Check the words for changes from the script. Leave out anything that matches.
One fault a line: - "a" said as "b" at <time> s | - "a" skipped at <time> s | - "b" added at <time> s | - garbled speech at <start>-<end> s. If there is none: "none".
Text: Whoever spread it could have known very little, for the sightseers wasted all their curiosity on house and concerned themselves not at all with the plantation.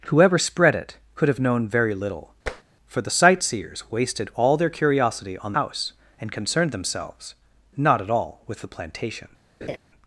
none